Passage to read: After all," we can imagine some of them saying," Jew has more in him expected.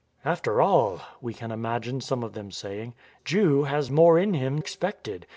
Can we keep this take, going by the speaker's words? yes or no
yes